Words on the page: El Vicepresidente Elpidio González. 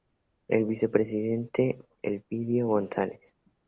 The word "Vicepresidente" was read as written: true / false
true